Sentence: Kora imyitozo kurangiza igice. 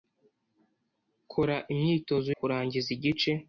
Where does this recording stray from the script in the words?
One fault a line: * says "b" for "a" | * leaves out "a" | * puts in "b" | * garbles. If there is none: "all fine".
all fine